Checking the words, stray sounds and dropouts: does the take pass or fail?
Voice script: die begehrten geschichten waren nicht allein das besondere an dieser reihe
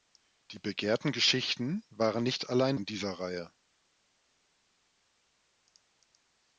fail